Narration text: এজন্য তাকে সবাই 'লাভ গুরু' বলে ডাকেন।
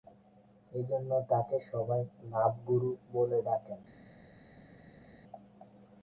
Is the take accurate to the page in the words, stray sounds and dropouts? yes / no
yes